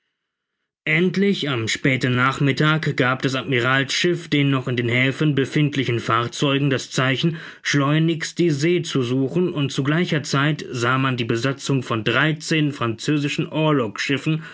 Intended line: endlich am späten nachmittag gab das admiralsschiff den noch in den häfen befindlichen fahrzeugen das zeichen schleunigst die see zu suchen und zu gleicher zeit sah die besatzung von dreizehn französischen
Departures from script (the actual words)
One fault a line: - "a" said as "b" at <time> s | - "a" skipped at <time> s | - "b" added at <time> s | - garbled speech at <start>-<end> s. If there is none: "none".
- "man" added at 11.0 s